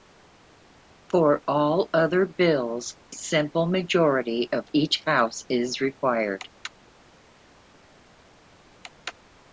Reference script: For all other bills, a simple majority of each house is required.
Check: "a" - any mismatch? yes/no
yes